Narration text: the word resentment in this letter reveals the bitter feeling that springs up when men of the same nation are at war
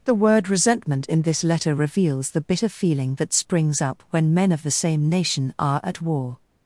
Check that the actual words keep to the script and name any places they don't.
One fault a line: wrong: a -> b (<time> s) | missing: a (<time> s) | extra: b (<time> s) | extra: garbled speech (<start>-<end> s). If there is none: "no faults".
no faults